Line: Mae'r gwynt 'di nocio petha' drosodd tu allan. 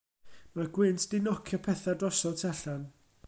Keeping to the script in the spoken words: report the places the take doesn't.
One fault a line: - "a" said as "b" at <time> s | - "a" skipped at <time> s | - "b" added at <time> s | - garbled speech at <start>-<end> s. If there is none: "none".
none